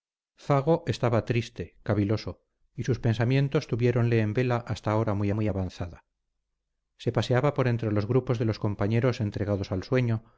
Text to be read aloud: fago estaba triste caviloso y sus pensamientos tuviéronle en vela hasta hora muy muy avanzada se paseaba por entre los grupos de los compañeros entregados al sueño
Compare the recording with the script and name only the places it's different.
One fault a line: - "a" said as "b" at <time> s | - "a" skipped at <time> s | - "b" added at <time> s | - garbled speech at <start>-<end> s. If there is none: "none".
none